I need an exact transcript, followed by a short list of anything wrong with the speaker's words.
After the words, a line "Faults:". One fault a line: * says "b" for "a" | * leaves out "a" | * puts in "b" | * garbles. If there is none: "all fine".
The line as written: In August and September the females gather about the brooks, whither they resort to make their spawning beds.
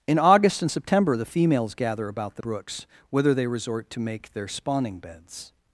In August and September the females gather about the brooks, whither they resort to make their spawning beds.
Faults:
all fine